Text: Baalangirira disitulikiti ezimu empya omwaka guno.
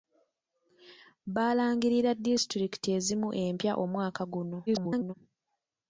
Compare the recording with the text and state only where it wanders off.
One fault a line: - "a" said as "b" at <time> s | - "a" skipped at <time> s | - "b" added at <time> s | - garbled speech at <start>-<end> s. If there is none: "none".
- garbled speech at 4.7-5.1 s